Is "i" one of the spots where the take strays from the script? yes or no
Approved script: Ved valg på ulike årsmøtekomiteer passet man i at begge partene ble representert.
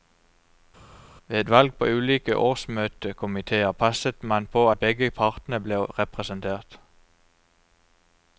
yes